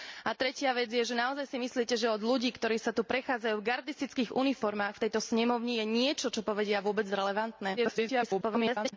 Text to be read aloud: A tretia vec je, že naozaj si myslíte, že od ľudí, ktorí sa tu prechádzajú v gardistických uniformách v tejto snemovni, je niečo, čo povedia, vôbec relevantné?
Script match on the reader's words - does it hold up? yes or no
no